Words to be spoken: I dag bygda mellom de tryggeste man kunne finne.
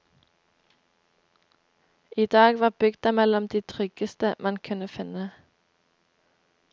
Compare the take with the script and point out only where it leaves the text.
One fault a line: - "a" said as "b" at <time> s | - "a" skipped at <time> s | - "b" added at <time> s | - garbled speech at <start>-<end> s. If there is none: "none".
- "var" added at 2.6 s